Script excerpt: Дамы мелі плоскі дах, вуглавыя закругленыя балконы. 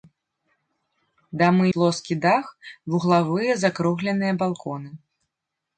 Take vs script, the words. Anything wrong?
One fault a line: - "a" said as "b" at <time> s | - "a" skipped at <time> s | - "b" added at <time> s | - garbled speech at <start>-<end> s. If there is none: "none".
- "мелі" skipped at 1.7 s